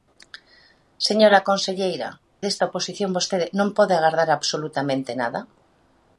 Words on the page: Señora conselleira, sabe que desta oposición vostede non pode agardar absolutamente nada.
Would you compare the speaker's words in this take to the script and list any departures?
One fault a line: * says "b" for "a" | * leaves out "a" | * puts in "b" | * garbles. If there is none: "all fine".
* leaves out "sabe que"